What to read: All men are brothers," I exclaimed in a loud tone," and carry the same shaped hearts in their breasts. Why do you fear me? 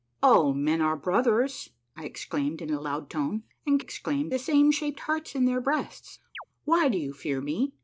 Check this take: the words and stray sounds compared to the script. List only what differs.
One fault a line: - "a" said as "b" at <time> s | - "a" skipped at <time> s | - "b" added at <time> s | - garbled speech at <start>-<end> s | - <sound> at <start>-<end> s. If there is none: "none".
- "carry" said as "exclaimed" at 3.8 s
- chirp at 6.3-6.4 s